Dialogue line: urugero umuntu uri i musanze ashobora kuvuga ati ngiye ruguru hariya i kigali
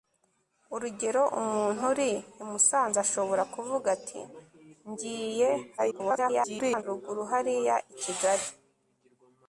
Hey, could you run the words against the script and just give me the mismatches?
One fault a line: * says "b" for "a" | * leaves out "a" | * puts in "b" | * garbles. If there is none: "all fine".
* garbles